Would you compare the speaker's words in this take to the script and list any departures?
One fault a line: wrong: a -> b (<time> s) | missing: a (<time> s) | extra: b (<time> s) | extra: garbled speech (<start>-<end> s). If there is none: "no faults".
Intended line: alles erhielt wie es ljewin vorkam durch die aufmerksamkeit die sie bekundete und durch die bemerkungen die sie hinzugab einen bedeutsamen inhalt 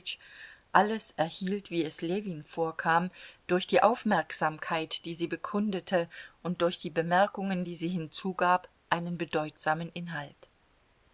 no faults